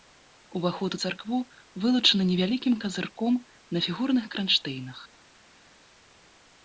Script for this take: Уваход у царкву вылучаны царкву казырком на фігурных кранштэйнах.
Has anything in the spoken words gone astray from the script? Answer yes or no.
yes